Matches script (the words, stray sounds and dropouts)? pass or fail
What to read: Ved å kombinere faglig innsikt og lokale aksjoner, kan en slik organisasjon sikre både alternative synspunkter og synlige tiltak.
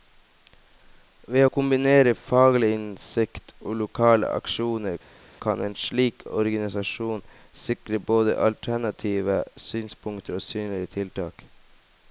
pass